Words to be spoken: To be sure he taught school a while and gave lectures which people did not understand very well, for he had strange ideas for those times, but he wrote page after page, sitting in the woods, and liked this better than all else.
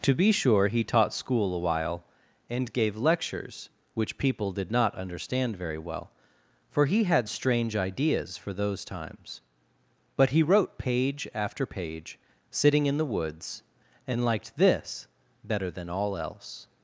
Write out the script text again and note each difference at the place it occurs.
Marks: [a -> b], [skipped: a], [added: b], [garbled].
To be sure he taught school a while and gave lectures which people did not understand very well, for he had strange ideas for those times, but he wrote page after page, sitting in the woods, and liked this better than all else.